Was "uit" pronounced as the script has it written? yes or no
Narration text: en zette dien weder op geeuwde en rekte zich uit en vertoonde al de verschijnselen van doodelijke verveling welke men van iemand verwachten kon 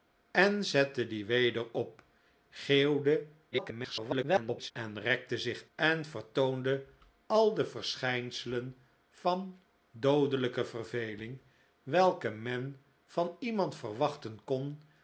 no